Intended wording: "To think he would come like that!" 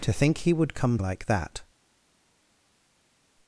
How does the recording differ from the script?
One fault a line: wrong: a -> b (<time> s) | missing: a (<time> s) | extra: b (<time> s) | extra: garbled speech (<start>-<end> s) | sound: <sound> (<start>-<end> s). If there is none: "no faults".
no faults